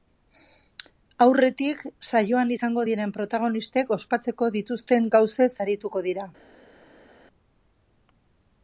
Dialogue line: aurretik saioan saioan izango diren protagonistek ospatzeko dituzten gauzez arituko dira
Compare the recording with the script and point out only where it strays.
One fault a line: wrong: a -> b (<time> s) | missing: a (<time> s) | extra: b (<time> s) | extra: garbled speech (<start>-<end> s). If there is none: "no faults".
missing: saioan (2.5 s)